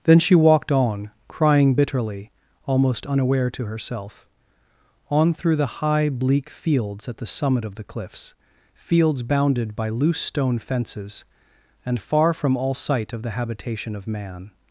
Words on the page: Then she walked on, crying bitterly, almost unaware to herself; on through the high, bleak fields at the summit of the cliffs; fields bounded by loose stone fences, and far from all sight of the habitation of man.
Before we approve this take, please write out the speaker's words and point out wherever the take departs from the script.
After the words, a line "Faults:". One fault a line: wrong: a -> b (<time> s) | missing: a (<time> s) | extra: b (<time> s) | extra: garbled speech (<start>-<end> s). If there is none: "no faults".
Then she walked on, crying bitterly, almost unaware to herself; on through the high, bleak fields at the summit of the cliffs; fields bounded by loose stone fences, and far from all sight of the habitation of man.
Faults:
no faults